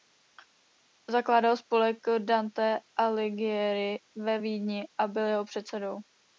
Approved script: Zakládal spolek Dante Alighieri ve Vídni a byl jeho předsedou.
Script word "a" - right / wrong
right